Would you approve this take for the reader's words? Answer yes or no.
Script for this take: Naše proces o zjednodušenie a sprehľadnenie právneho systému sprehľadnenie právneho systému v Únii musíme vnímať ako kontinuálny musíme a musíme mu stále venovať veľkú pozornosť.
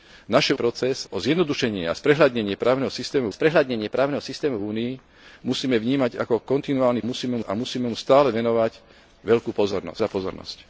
yes